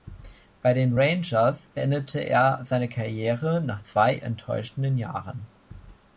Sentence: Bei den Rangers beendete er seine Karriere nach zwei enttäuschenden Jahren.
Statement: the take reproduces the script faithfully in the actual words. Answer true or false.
true